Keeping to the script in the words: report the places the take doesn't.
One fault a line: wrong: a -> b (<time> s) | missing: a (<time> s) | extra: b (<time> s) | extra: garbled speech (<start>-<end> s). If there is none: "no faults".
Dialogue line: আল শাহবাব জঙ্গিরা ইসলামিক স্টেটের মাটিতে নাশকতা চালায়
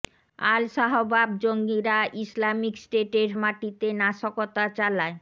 no faults